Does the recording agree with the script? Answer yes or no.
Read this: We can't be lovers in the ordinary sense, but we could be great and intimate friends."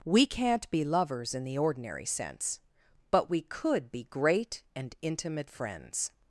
yes